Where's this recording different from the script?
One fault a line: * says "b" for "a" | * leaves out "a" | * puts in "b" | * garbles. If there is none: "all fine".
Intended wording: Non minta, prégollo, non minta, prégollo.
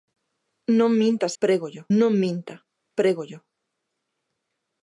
all fine